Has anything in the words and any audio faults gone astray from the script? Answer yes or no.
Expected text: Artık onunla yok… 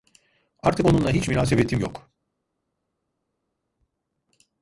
yes